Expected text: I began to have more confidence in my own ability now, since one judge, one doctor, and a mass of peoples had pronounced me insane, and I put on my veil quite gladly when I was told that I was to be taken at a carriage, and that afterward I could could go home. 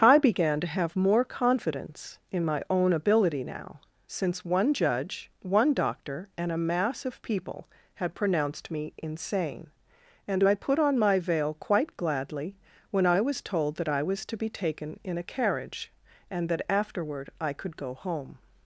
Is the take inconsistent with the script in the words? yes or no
yes